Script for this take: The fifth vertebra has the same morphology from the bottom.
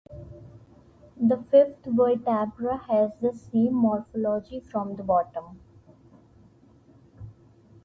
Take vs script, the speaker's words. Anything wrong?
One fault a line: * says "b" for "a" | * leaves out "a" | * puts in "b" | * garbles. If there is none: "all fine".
all fine